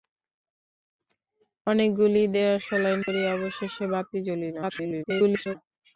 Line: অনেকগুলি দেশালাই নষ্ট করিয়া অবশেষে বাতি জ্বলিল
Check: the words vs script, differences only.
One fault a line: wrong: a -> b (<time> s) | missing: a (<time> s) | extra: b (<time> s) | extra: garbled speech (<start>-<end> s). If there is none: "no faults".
missing: নষ্ট (3.0 s)
extra: garbled speech (4.6-5.6 s)